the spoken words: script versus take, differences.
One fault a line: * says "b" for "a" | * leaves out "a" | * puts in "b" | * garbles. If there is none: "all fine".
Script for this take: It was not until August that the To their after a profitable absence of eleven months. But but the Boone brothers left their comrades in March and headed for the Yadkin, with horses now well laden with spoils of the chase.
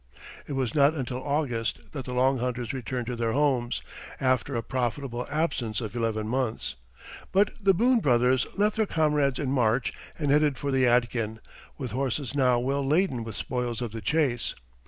* puts in "Long Hunters returned"
* puts in "homes"
* leaves out "but"